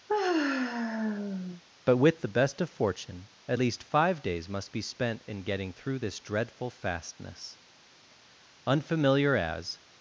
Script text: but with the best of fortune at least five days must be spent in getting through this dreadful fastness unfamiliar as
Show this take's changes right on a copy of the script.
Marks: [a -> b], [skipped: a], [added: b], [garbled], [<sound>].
[sigh] but with the best of fortune at least five days must be spent in getting through this dreadful fastness unfamiliar as